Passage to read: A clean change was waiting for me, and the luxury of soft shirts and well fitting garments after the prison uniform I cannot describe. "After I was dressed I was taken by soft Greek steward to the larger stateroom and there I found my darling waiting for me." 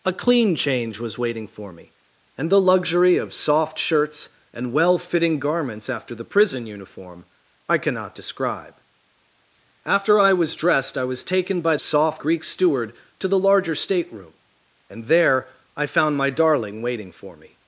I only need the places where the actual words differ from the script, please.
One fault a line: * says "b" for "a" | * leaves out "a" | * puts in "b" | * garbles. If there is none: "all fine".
all fine